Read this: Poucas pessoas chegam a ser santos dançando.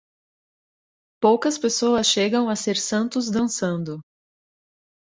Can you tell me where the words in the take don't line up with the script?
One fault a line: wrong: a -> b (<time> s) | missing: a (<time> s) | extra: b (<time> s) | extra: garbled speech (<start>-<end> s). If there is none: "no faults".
no faults